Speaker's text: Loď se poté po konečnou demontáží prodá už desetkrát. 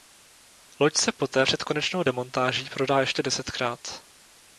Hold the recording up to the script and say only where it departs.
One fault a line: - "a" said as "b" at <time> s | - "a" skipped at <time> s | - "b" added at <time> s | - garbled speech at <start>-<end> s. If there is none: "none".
- "po" said as "před" at 1.4 s
- "už" said as "ještě" at 3.0 s